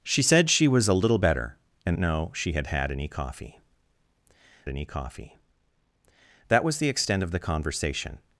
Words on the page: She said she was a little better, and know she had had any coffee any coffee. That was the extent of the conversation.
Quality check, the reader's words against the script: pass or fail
pass